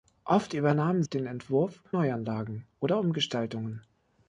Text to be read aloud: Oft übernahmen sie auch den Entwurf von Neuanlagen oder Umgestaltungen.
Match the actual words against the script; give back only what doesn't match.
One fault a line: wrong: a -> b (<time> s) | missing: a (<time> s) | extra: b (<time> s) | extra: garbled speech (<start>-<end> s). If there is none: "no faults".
missing: sie auch (1.0 s)
missing: von (1.8 s)